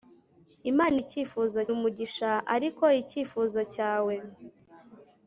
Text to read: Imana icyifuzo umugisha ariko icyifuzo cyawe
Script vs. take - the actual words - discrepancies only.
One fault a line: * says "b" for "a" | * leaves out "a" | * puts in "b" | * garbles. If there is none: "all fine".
all fine